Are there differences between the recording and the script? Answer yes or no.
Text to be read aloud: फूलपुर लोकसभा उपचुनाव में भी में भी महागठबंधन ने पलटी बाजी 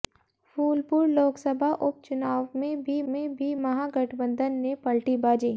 no